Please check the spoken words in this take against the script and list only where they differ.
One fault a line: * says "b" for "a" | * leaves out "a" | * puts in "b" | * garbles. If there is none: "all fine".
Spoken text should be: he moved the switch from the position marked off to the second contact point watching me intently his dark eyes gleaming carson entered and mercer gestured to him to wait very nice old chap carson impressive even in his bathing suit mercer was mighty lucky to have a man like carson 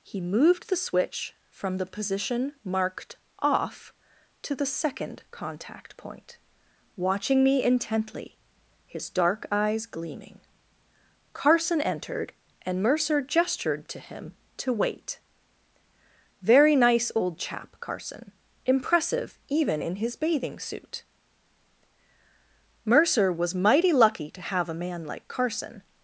all fine